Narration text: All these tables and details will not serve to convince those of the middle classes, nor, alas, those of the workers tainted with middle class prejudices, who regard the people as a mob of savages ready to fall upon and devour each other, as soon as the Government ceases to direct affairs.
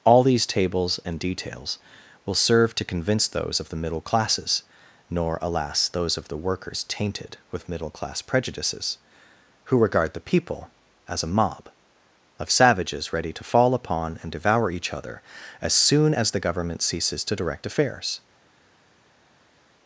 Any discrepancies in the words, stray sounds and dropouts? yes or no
yes